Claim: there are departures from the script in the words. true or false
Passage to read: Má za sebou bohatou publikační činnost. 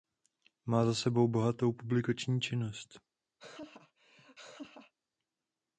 false